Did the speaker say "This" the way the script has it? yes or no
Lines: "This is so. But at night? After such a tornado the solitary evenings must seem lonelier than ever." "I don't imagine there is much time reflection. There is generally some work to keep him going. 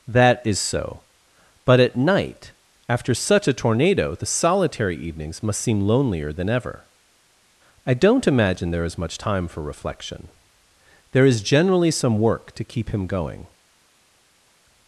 no